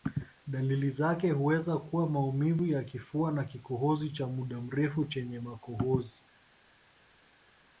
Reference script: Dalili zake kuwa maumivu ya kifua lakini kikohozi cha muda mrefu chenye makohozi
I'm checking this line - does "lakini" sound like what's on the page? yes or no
no